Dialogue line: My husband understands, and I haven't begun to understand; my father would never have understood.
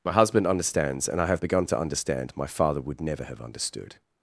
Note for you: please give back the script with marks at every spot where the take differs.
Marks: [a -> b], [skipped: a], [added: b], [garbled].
My husband understands, and I [haven't -> have] begun to understand; my father would never have understood.